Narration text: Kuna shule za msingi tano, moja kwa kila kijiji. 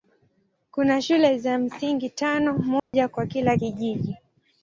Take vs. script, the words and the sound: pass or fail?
fail